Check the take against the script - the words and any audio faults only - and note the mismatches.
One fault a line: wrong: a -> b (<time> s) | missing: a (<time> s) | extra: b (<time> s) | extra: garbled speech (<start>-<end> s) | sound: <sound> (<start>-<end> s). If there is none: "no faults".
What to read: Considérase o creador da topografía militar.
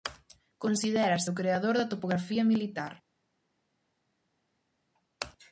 no faults